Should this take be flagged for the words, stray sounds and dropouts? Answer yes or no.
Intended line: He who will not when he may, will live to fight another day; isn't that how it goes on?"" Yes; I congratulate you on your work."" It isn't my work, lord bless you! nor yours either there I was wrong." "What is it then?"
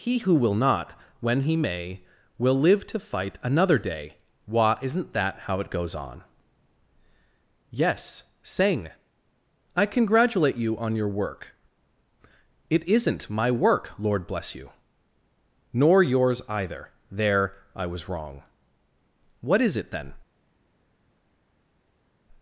yes